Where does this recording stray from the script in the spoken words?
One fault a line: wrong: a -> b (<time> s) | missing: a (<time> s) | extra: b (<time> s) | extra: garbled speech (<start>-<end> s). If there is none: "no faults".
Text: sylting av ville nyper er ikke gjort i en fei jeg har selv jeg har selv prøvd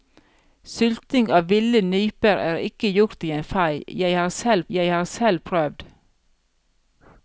no faults